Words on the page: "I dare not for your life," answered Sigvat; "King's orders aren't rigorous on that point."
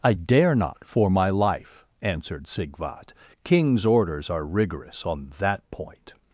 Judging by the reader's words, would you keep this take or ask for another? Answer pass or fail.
fail